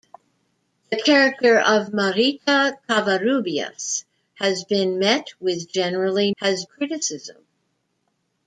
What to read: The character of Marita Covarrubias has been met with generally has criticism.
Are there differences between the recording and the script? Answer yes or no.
no